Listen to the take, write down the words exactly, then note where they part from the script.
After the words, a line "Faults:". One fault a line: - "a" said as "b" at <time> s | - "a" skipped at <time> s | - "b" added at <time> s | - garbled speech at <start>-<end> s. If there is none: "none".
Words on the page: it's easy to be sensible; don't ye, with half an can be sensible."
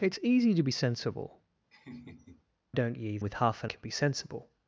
it's easy to be sensible; don't ye, with half an can be sensible."
Faults:
none